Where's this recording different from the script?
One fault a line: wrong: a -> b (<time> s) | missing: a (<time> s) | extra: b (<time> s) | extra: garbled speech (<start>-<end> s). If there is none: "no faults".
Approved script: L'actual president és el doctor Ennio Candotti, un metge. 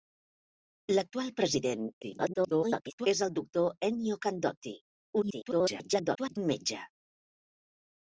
extra: garbled speech (2.0-3.1 s)
extra: garbled speech (5.2-6.4 s)